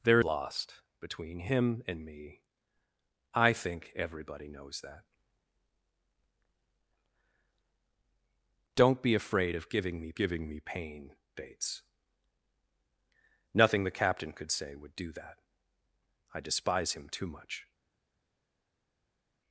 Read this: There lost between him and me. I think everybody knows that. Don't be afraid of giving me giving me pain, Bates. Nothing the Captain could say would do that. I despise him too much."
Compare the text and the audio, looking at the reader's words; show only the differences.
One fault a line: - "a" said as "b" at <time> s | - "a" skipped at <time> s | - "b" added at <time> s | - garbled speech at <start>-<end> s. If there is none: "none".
none